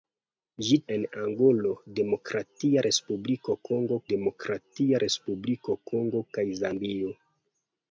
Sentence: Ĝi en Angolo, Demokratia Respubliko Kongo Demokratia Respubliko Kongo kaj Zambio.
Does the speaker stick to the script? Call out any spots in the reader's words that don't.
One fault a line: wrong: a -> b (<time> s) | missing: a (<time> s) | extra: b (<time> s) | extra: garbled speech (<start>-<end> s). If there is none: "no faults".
no faults